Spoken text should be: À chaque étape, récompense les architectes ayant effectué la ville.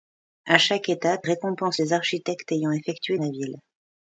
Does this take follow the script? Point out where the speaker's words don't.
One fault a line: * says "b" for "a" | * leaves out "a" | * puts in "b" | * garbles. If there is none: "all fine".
all fine